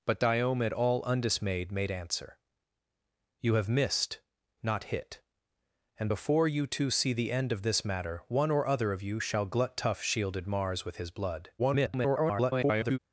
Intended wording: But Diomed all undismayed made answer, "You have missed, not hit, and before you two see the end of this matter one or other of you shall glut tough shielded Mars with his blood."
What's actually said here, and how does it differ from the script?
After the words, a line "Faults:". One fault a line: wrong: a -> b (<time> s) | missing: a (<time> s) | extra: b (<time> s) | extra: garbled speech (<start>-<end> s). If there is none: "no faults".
But Diomed all undismayed made answer, "You have missed, not hit, and before you two see the end of this matter one or other of you shall glut tough shielded Mars with his blood." [garbled]
Faults:
extra: garbled speech (11.6-13.0 s)